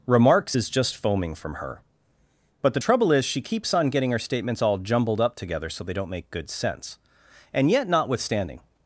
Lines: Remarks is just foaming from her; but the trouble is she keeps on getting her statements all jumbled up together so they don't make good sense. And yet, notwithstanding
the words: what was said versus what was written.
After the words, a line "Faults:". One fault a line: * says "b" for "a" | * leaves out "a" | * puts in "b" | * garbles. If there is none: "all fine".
Remarks is just foaming from her; but the trouble is she keeps on getting her statements all jumbled up together so they don't make good sense. And yet, notwithstanding
Faults:
all fine